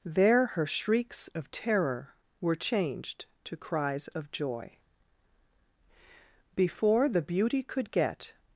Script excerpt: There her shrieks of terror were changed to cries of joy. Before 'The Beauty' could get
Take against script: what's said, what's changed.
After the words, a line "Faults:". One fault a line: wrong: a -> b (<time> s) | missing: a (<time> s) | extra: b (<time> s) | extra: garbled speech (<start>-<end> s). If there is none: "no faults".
There her shrieks of terror were changed to cries of joy. Before 'The Beauty' could get
Faults:
no faults